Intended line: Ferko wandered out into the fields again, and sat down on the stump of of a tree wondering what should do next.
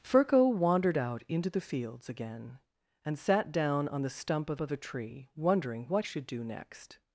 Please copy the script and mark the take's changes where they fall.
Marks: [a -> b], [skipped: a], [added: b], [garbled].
Ferko wandered out into the fields again, and sat down on the stump of of a tree wondering what should do next.